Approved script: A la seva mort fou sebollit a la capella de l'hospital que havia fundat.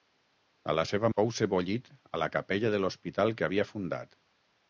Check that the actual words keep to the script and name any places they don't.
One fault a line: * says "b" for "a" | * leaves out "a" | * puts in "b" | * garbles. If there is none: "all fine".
* leaves out "mort"